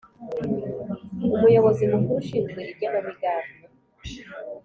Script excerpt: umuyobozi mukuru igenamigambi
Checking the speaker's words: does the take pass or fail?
fail